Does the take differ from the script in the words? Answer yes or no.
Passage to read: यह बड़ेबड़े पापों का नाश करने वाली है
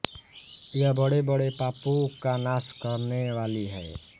no